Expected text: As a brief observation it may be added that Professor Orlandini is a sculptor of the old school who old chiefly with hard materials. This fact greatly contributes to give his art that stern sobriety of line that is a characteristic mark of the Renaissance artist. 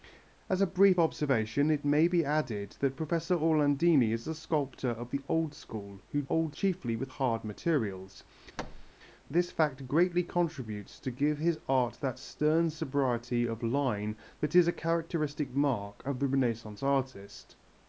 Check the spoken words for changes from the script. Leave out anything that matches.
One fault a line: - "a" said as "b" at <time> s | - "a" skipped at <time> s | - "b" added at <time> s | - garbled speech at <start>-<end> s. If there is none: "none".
none